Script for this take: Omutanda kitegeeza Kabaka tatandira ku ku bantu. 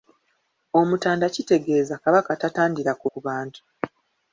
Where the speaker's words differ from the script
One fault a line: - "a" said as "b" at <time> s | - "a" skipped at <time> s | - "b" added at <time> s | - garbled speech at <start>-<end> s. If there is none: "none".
none